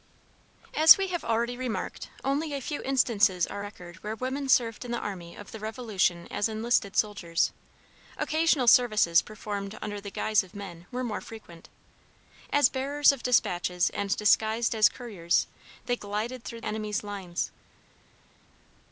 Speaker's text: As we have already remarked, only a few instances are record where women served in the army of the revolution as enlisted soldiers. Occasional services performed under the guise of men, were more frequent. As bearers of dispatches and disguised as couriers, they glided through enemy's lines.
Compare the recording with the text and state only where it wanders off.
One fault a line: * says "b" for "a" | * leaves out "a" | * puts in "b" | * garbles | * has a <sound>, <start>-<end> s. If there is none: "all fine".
all fine